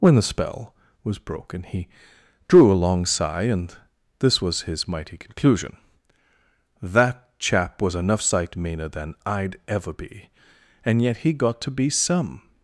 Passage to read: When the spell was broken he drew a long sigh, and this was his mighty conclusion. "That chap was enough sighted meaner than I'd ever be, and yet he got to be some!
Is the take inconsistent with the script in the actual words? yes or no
yes